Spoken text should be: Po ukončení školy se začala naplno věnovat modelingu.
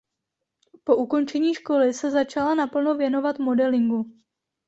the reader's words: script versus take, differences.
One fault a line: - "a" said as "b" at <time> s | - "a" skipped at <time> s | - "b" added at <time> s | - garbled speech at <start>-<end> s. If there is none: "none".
none